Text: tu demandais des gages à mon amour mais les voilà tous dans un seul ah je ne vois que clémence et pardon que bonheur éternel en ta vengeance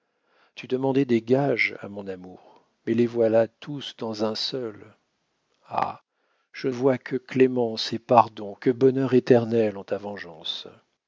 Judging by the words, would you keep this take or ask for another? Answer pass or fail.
fail